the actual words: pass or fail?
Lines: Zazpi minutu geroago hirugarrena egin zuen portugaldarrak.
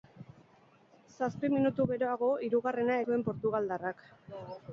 fail